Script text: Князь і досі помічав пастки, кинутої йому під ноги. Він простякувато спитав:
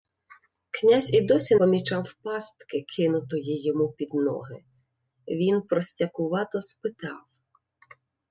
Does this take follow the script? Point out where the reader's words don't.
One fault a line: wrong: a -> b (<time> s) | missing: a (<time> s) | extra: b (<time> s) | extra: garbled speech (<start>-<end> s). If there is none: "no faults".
no faults